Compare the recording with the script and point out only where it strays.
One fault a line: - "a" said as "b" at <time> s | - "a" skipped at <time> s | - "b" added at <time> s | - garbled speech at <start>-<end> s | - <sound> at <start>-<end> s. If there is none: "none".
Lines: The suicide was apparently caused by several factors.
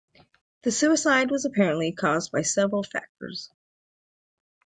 none